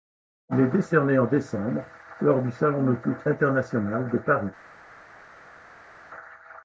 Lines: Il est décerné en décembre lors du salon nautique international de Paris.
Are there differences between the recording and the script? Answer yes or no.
no